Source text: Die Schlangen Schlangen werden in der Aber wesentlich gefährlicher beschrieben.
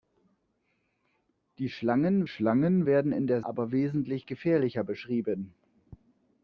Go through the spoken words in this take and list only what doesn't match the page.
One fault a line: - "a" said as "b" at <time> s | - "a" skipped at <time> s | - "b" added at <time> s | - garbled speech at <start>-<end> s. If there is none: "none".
none